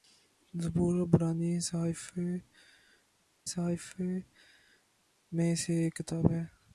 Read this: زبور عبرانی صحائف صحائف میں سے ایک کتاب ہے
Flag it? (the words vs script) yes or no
no